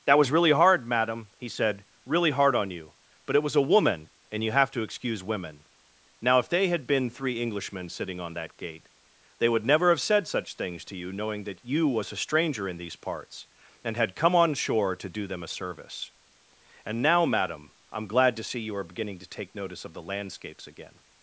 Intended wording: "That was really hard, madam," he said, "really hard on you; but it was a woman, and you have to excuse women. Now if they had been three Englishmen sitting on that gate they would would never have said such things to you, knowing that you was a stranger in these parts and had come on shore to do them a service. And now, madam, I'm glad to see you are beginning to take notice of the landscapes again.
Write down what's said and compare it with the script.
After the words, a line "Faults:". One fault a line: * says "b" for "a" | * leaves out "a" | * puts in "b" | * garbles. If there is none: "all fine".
"That was really hard, madam," he said, "really hard on you; but it was a woman, and you have to excuse women. Now if they had been three Englishmen sitting on that gate they would never have said such things to you, knowing that you was a stranger in these parts and had come on shore to do them a service. And now, madam, I'm glad to see you are beginning to take notice of the landscapes again.
Faults:
* leaves out "would"